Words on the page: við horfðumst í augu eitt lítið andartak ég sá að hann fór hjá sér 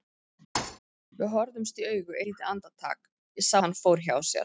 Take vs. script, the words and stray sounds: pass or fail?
fail